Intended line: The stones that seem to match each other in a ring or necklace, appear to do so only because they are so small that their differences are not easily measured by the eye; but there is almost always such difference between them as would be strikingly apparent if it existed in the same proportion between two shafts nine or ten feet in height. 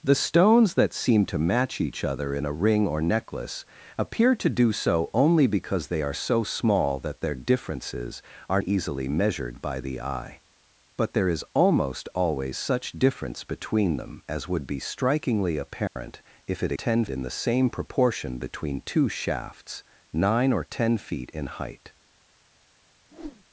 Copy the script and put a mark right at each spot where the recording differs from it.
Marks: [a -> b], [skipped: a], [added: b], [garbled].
The stones that seem to match each other in a ring or necklace, appear to do so only because they are so small that their differences are [skipped: not] easily measured by the eye; but there is almost always such difference between them as would be strikingly apparent if it [existed -> ten] in the same proportion between two shafts nine or ten feet in height.